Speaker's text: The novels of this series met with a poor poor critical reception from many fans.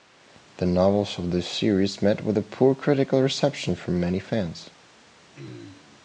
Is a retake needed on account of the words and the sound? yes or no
yes